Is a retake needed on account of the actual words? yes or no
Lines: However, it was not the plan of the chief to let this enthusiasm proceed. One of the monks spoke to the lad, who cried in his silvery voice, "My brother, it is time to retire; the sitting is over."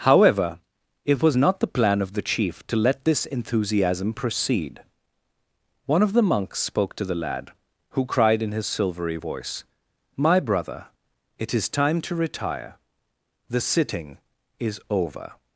no